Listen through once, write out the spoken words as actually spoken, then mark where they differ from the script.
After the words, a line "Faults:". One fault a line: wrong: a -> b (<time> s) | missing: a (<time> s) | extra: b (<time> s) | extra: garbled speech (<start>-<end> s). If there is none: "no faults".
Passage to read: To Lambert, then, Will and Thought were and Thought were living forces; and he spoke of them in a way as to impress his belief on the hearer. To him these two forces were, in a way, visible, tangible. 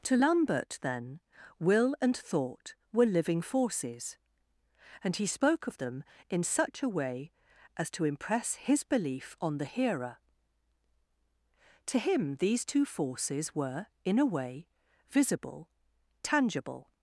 To Lambert, then, Will and Thought were living forces; and he spoke of them in such a way as to impress his belief on the hearer. To him these two forces were, in a way, visible, tangible.
Faults:
missing: and Thought were (3.0 s)
extra: such (6.4 s)